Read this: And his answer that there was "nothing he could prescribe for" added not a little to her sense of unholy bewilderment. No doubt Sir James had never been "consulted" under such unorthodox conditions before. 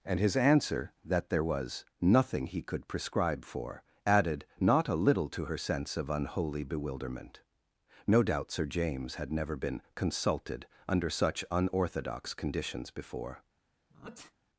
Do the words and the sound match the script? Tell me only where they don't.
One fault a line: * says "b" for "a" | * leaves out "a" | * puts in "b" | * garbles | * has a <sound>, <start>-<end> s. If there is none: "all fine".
* has a sneeze, 13.9-14.3 s